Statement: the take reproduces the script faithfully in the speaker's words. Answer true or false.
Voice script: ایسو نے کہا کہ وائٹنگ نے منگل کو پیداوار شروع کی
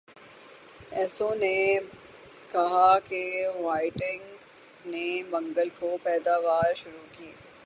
true